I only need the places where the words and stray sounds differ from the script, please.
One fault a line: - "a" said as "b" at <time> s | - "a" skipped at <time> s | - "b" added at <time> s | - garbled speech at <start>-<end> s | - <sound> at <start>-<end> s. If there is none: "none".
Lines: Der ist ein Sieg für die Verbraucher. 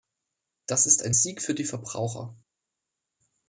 - "Der" said as "Das" at 0.7 s